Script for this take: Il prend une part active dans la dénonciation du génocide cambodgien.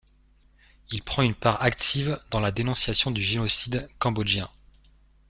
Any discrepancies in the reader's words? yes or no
no